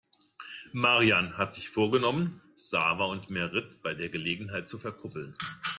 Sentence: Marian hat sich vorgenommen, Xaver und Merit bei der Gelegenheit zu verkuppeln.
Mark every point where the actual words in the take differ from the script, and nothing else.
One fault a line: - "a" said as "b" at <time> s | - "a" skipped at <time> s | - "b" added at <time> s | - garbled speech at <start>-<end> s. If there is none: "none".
none